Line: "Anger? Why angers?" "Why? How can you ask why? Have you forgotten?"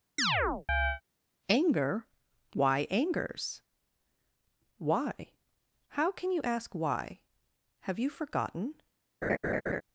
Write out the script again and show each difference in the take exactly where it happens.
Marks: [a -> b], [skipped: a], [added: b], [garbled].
"Anger? Why angers?" "Why? How can you ask why? Have you forgotten?"